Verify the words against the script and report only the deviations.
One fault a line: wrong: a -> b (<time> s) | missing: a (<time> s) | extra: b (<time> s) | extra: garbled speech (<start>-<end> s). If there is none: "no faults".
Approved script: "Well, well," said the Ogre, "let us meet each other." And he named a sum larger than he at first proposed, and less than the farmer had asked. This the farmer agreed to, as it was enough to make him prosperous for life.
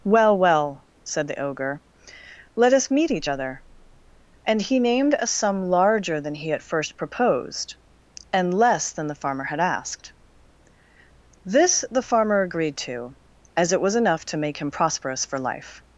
no faults